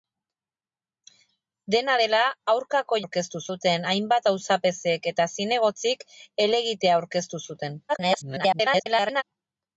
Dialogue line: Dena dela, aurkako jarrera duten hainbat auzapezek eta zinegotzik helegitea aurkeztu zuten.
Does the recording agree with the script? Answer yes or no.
no